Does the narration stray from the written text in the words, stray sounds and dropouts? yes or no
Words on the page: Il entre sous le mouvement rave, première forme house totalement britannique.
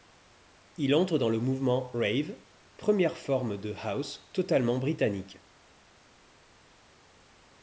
yes